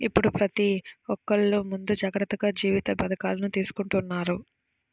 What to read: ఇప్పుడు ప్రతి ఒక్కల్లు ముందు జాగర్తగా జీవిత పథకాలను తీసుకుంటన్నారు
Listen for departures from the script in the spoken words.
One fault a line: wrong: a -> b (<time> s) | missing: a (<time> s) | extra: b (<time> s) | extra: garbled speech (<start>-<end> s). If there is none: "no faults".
no faults